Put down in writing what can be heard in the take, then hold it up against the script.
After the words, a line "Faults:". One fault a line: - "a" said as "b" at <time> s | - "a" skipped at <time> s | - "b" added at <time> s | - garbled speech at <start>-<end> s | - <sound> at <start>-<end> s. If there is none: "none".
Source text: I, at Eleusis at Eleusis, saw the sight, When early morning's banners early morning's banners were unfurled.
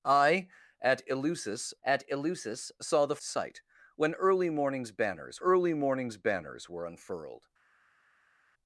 I, at Eleusis at Eleusis, saw the sight, When early morning's banners early morning's banners were unfurled.
Faults:
none